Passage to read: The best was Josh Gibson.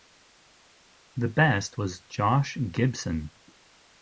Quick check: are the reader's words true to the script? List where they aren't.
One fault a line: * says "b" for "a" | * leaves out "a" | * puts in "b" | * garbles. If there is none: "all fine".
all fine